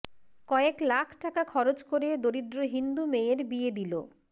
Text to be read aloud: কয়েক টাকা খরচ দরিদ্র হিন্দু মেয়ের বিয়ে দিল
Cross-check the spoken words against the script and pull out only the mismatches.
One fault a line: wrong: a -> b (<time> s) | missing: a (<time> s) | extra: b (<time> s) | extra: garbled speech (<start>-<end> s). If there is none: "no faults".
extra: লাখ (0.8 s)
extra: করে (1.9 s)